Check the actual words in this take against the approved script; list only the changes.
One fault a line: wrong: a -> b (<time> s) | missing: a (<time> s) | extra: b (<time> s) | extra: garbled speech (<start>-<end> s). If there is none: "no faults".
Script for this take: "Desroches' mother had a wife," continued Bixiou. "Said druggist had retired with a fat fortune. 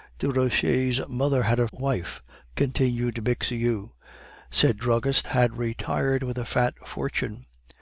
no faults